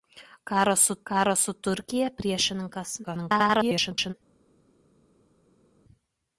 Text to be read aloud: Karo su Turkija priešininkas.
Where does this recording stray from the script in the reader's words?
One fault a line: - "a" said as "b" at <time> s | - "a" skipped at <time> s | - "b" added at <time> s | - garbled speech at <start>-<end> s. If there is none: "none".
- "karo su" added at 1.1 s
- garbled speech at 3.0-4.1 s